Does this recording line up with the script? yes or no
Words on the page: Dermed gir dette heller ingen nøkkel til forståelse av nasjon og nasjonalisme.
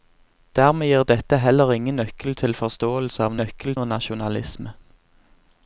no